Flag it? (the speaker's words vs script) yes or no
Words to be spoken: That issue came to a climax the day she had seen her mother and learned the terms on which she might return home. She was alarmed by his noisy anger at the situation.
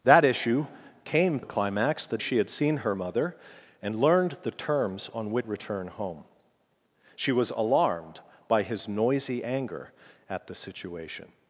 yes